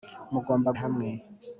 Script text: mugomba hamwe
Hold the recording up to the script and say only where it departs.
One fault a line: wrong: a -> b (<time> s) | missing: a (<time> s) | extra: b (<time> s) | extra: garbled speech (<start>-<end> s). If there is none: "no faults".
no faults